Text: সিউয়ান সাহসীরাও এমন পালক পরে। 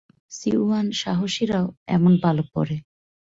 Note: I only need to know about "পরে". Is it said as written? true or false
true